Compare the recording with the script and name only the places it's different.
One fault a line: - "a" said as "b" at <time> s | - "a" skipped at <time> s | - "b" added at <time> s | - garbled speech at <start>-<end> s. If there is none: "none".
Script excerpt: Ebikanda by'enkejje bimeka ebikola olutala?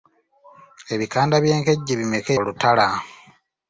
- "ebikola" skipped at 2.3 s